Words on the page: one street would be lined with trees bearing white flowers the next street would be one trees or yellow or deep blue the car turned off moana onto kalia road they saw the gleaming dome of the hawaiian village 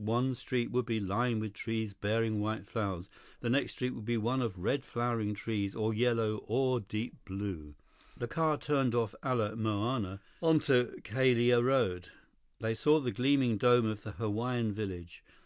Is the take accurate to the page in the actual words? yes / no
no